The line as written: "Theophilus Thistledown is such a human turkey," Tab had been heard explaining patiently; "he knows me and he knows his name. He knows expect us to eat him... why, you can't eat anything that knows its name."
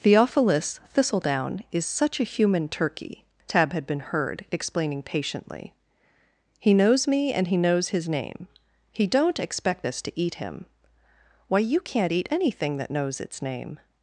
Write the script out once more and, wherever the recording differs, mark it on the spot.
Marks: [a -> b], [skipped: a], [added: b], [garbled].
"Theophilus Thistledown is such a human turkey," Tab had been heard explaining patiently; "he knows me and he knows his name. He [knows -> don't] expect us to eat him... why, you can't eat anything that knows its name."